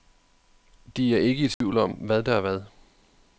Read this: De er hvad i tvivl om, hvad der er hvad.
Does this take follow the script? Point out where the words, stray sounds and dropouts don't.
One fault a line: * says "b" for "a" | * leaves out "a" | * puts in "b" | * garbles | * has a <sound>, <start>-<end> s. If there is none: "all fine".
* says "ikke" for "hvad"
* has a dropout, 1.5-1.6 s